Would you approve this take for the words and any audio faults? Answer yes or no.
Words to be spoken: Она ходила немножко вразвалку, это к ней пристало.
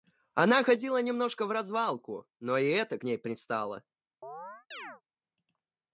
no